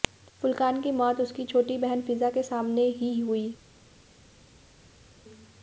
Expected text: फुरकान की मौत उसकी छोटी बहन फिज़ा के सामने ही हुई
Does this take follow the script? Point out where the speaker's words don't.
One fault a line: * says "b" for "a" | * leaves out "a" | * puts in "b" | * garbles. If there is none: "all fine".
all fine